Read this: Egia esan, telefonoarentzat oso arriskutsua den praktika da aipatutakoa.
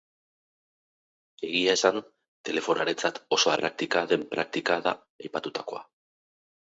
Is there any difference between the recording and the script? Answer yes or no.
yes